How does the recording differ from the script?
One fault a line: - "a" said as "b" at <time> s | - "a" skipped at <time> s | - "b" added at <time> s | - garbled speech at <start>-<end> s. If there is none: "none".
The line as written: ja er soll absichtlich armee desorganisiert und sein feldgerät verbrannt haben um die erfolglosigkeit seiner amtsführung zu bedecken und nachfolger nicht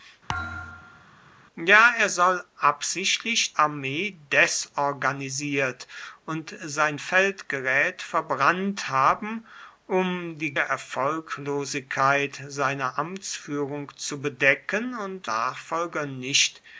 none